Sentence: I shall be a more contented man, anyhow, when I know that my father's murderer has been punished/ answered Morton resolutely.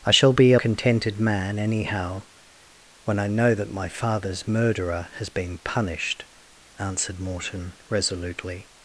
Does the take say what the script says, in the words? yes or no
no